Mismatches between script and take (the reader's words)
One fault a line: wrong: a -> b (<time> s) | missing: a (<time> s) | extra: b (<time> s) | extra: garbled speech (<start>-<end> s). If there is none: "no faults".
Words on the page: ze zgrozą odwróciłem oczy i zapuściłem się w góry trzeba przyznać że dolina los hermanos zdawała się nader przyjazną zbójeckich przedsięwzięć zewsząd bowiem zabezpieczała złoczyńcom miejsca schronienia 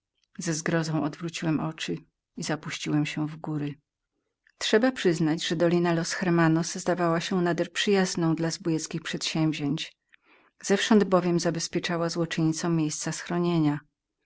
extra: dla (8.3 s)